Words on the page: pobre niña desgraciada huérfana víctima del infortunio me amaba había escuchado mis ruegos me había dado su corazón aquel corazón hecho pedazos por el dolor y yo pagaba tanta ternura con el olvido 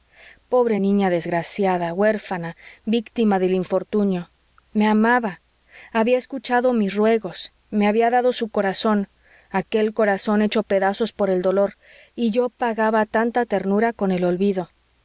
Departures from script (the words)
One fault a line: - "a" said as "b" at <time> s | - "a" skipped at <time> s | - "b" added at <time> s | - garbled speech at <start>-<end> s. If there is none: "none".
none